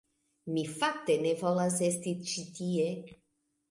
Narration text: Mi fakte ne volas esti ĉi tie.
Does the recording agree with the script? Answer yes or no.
yes